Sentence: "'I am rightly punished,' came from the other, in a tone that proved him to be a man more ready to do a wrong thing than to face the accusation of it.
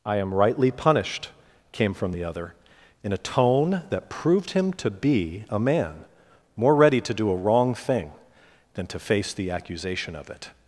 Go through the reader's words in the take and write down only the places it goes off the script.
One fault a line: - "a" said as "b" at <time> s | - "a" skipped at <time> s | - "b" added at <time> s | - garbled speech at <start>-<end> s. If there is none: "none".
none